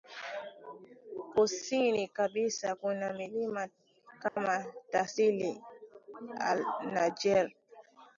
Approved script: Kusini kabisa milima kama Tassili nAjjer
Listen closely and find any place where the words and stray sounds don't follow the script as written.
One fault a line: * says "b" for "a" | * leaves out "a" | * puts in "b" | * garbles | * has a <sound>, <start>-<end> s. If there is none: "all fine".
* puts in "kuna"
* has a dropout, 4.3-4.4 s